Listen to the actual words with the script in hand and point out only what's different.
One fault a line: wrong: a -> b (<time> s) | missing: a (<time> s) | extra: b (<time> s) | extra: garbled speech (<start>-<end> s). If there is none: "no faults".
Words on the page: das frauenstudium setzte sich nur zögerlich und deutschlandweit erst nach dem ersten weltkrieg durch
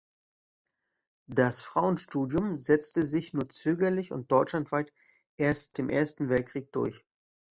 missing: nach (5.8 s)